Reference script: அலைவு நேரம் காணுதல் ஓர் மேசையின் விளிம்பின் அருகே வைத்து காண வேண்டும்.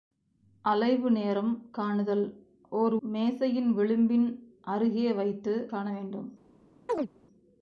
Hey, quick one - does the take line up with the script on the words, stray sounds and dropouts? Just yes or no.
no